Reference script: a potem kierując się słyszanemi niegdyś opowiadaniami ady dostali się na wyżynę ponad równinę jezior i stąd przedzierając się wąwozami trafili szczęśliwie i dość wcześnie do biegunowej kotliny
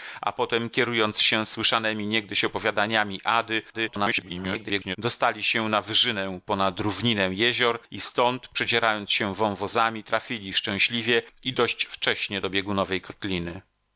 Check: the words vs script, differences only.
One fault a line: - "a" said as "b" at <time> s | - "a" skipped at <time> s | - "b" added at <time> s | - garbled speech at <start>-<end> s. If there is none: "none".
- garbled speech at 3.7-5.0 s